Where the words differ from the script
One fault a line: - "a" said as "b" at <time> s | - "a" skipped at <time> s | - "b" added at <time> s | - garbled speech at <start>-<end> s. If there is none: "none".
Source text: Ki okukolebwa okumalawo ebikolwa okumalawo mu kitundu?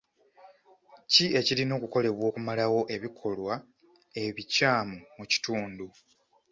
- "ekirina" added at 1.4 s
- "okumalawo" said as "ebikyamu" at 4.2 s